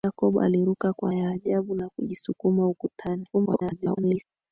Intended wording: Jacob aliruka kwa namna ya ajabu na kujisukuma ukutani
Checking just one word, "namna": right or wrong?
wrong